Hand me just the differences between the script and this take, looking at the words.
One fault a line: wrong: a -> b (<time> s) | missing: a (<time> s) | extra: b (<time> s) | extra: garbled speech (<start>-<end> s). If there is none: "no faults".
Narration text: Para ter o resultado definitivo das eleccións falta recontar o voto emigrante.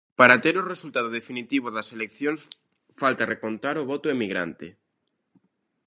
no faults